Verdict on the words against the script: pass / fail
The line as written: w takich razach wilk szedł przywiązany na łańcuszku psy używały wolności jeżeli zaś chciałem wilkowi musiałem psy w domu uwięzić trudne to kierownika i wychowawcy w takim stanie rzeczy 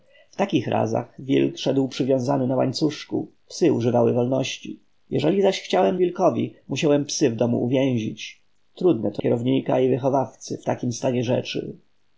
pass